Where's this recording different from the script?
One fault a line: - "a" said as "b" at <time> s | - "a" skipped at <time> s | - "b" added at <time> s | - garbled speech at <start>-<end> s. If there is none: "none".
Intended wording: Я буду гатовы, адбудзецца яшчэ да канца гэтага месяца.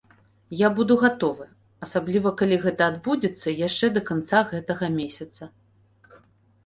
- "асабліва калі гэта" added at 1.9 s